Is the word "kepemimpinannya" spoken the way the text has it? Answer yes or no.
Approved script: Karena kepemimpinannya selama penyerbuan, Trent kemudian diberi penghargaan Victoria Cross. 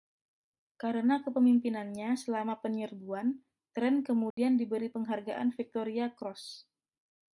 yes